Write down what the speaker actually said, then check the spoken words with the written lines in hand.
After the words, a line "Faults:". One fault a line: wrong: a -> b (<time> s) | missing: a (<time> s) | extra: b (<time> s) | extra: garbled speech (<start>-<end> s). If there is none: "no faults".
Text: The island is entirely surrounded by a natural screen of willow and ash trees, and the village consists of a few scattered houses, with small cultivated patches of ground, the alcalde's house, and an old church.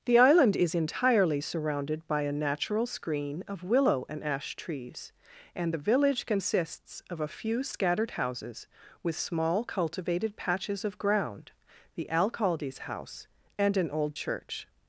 The island is entirely surrounded by a natural screen of willow and ash trees, and the village consists of a few scattered houses, with small cultivated patches of ground, the alcalde's house, and an old church.
Faults:
no faults